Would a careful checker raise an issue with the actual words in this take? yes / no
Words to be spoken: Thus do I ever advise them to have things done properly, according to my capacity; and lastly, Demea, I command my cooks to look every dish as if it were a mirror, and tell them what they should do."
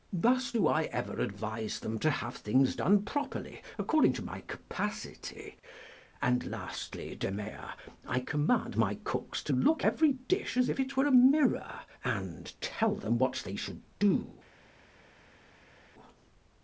no